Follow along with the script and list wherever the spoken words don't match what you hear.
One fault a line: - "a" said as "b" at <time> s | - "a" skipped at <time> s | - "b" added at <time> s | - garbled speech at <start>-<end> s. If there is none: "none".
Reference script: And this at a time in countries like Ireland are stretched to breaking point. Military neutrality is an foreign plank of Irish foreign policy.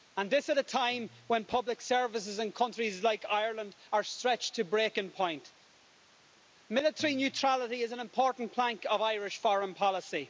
- "when public services" added at 1.3 s
- "foreign" said as "important" at 8.0 s